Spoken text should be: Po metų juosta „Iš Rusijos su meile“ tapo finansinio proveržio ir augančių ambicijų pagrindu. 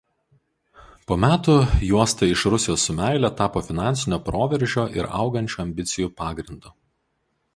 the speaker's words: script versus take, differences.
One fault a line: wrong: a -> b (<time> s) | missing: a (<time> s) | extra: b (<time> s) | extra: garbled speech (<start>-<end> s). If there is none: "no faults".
no faults